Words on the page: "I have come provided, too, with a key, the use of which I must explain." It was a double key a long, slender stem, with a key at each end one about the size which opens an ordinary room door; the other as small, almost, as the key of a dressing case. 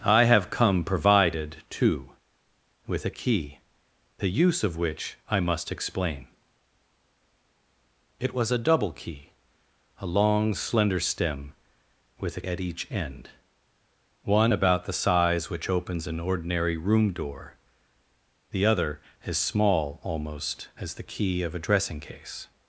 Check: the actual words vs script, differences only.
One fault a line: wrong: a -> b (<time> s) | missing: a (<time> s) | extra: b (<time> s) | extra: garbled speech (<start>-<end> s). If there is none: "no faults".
missing: key (12.4 s)